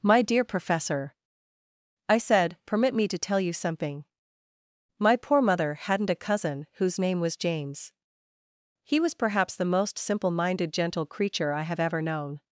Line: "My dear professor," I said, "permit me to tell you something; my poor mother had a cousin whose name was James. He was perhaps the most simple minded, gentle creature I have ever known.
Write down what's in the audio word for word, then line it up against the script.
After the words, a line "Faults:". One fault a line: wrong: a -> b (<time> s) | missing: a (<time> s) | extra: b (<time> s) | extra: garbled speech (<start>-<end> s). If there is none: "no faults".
"My dear professor," I said, "permit me to tell you something; my poor mother hadn't a cousin whose name was James. He was perhaps the most simple minded, gentle creature I have ever known.
Faults:
wrong: had -> hadn't (5.8 s)